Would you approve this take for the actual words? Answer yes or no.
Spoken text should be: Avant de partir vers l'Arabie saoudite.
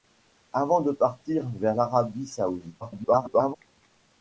no